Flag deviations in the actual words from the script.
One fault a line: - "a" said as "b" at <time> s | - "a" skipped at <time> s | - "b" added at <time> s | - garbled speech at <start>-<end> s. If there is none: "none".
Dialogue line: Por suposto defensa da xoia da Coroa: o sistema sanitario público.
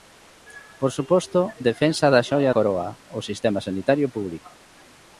- "da" skipped at 2.5 s